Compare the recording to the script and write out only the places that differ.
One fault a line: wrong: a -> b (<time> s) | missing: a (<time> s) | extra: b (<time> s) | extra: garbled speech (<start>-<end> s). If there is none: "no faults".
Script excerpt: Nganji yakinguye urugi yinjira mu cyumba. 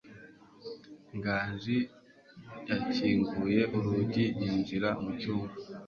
no faults